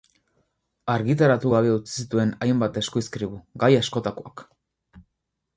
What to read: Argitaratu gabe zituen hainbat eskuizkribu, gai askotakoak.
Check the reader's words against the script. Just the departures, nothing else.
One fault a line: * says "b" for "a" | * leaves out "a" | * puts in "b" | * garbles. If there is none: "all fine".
* puts in "utzi"